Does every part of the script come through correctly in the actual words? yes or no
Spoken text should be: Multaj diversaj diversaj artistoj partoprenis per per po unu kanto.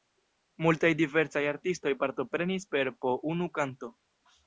no